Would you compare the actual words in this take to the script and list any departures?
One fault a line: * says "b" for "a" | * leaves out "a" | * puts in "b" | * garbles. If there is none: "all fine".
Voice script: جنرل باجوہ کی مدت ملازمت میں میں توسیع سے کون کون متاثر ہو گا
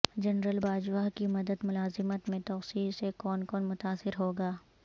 * leaves out "میں"